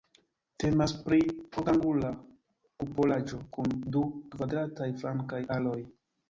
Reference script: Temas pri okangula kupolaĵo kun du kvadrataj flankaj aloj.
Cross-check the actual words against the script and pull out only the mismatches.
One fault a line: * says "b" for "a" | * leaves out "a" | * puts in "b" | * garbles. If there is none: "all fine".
all fine